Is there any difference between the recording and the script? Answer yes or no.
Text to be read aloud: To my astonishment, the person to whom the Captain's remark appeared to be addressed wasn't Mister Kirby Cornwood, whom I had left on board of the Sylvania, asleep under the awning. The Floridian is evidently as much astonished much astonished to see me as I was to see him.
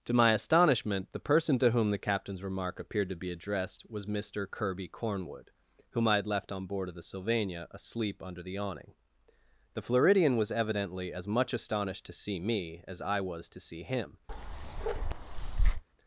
yes